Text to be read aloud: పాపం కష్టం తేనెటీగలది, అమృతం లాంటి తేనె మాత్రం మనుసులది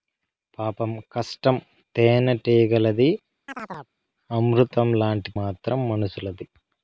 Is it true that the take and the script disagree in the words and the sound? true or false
true